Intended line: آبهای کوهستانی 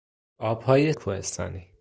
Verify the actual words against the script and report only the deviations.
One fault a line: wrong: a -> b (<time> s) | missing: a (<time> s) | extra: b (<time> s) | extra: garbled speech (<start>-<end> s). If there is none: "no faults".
no faults